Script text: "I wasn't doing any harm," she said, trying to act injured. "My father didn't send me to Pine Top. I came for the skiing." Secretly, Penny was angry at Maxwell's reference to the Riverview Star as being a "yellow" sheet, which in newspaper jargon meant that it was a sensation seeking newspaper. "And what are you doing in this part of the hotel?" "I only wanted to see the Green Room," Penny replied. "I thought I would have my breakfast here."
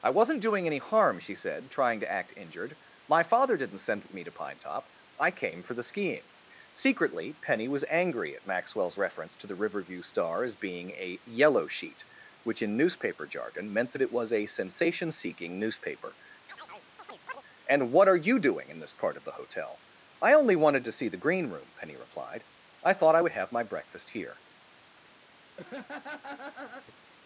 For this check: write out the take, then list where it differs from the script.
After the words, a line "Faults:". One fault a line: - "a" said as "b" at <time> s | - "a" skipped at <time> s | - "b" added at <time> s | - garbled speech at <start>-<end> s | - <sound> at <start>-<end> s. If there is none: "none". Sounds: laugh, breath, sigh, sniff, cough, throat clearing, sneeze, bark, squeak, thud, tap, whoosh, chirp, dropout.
"I wasn't doing any harm," she said, trying to act injured. "My father didn't send me to Pine Top. I came for the skiing." Secretly, Penny was angry at Maxwell's reference to the Riverview Star as being a "yellow" sheet, which in newspaper jargon meant that it was a sensation seeking newspaper. "And what are you doing in this part of the hotel?" "I only wanted to see the Green Room," Penny replied. "I thought I would have my breakfast here."
Faults:
- chirp at 16.5-17.4 s
- laugh at 25.6-27.0 s